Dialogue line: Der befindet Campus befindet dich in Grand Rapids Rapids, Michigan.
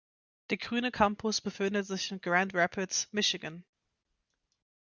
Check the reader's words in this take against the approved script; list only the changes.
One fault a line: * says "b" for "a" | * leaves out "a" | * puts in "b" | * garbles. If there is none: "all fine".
* says "grüne" for "befindet"
* says "sich" for "dich"
* leaves out "Rapids"